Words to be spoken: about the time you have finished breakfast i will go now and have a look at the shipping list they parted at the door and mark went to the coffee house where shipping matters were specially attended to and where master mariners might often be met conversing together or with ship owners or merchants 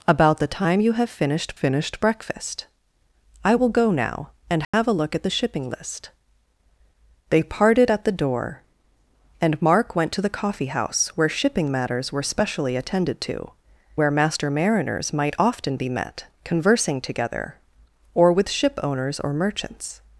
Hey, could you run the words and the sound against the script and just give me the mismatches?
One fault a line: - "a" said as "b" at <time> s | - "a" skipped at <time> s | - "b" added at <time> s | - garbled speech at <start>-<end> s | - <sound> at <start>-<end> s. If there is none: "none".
- "finished" added at 1.5 s
- dropout at 4.6-4.7 s
- "and" skipped at 13.5 s